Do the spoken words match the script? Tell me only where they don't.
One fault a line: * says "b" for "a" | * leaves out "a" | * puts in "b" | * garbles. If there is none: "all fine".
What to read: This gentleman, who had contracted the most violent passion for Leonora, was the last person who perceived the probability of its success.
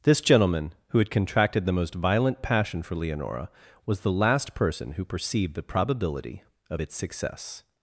all fine